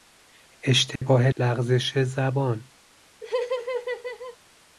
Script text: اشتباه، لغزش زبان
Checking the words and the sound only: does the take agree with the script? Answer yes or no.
no